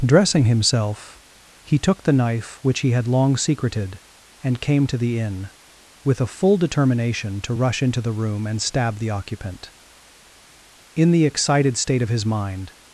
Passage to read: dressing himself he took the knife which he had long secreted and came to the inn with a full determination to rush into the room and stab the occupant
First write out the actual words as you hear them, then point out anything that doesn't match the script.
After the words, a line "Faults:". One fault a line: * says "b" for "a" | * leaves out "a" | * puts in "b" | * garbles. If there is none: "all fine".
dressing himself he took the knife which he had long secreted and came to the inn with a full determination to rush into the room and stab the occupant in the excited state of his mind
Faults:
* puts in "in the excited state of his mind"